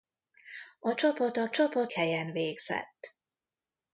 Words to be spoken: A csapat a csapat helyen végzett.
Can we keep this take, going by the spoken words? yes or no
yes